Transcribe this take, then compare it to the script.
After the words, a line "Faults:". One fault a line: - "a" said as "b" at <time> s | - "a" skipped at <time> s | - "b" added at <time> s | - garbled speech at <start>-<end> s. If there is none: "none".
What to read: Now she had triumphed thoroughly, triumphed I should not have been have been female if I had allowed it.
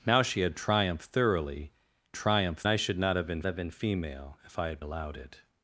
Now she had triumphed thoroughly, triumphed I should not have been have been female if I had allowed it.
Faults:
none